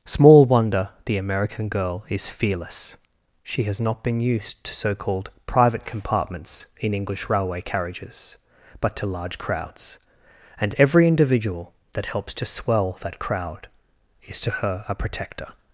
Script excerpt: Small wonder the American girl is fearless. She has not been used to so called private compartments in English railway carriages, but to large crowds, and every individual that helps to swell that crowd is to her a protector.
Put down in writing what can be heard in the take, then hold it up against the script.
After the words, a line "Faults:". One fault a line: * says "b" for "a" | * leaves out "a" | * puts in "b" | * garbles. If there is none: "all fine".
Small wonder the American girl is fearless. She has not been used to so called private compartments in English railway carriages, but to large crowds, and every individual that helps to swell that crowd is to her a protector.
Faults:
all fine